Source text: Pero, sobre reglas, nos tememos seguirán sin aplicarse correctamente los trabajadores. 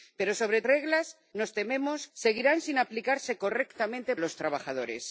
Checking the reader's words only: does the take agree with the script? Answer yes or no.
yes